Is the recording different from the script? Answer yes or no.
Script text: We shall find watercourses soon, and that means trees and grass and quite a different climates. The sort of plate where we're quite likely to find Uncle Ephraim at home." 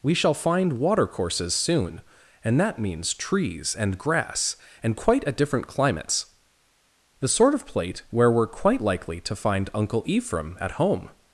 no